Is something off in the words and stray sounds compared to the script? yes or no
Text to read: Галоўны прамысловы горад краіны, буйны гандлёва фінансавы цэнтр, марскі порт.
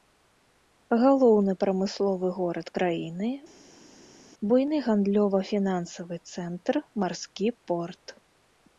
no